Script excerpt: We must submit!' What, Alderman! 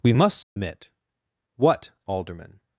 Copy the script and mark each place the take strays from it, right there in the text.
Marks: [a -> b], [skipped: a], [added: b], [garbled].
We must submit!' What, Alderman!